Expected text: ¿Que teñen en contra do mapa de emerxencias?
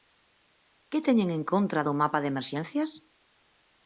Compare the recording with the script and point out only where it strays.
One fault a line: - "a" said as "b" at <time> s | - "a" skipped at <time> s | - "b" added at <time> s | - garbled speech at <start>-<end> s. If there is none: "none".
none